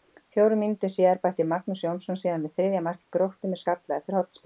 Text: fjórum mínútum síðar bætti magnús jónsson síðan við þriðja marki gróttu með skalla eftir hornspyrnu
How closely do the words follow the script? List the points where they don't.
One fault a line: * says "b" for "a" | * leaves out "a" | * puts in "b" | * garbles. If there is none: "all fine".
all fine